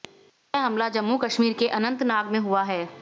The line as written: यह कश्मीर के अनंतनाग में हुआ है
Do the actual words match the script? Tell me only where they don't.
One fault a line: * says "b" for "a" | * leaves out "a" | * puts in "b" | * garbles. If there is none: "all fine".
* puts in "हमला जम्मू"